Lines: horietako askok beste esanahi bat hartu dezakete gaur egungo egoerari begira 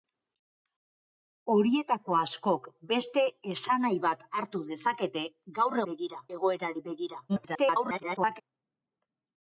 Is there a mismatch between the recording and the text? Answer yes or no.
yes